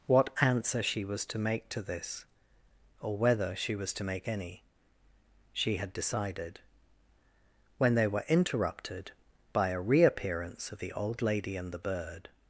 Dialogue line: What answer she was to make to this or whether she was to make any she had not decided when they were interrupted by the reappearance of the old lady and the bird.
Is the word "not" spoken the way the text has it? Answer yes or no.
no